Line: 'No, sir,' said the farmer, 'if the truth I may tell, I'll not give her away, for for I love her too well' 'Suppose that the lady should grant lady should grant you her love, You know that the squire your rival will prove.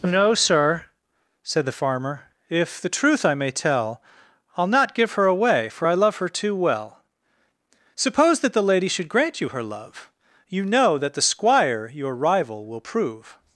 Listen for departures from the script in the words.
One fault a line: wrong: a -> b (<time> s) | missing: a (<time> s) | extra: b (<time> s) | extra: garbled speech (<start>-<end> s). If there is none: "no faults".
missing: for (5.9 s)
missing: lady should grant (9.4 s)